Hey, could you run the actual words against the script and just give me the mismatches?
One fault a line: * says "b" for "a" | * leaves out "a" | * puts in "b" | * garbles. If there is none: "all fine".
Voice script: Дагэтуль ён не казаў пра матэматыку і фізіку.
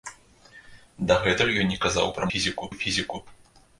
* says "фізіку" for "матэматыку"